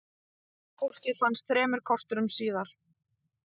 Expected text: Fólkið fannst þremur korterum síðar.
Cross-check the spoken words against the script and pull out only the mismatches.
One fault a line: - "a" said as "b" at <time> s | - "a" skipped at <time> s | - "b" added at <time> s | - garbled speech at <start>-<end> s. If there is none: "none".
none